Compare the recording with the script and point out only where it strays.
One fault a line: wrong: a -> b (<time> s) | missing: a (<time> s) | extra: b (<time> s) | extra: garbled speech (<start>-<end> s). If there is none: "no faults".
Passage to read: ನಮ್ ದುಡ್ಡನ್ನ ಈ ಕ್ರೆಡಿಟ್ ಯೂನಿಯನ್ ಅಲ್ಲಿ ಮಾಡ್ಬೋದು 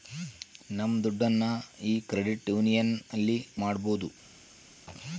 no faults